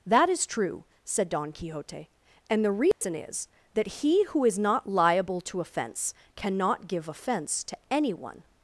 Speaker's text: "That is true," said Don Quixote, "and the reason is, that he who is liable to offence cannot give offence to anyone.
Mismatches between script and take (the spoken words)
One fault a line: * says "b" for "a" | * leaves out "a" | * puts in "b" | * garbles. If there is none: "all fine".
* puts in "not"